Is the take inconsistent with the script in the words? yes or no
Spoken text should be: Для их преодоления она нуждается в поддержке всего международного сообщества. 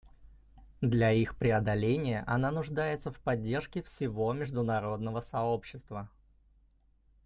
no